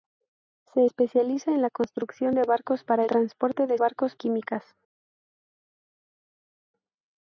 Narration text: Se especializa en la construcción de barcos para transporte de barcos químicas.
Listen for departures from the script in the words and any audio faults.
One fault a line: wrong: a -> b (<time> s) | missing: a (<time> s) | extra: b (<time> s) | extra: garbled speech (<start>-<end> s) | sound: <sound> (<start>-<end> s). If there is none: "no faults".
no faults